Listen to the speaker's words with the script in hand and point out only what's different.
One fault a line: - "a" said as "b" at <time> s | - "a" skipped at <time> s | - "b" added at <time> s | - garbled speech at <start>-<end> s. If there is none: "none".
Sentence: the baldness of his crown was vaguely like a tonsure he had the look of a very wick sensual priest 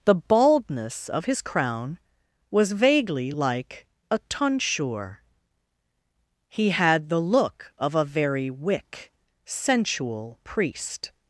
none